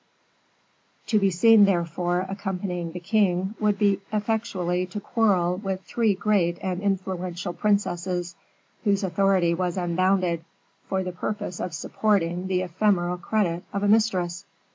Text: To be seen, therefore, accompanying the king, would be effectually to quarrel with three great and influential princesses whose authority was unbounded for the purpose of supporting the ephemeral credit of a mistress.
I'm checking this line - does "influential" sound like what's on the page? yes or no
yes